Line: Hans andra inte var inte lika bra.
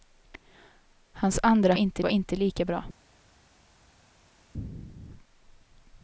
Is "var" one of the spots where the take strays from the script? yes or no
no